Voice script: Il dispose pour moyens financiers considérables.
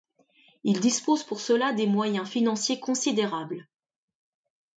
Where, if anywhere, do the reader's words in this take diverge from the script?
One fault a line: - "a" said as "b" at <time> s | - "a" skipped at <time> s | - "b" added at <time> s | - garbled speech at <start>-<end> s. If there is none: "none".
- "cela des" added at 1.4 s